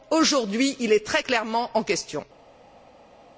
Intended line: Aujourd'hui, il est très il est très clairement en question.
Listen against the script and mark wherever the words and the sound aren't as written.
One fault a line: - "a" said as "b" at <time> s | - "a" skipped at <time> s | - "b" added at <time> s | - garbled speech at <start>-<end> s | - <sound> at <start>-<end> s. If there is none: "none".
- "il est très" skipped at 1.2 s